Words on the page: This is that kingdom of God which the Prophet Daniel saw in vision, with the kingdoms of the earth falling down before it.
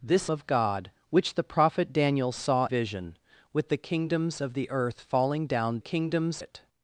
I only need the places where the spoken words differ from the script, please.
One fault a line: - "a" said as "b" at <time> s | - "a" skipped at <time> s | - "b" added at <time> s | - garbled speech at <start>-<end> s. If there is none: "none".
- "is that kingdom" skipped at 0.3 s
- "in" skipped at 2.7 s
- "before" said as "kingdoms" at 5.8 s